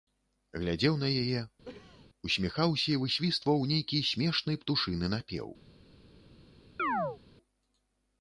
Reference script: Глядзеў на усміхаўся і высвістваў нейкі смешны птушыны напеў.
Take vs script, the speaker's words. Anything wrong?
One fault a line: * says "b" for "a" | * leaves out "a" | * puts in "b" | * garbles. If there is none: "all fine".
* puts in "яе"